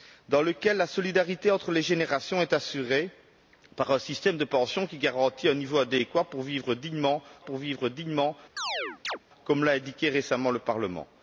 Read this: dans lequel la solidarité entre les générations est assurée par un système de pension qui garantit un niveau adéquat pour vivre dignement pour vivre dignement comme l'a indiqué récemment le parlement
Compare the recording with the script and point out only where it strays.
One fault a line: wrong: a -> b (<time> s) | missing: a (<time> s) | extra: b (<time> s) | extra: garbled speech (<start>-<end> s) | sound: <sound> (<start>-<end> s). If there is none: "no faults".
sound: chirp (8.6-9.2 s)